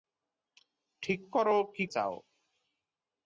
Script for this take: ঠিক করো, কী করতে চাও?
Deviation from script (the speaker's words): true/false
true